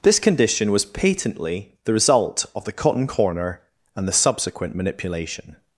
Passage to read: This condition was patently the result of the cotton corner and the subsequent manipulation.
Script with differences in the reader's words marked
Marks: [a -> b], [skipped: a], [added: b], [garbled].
This condition was patently the result of the cotton corner and the subsequent manipulation.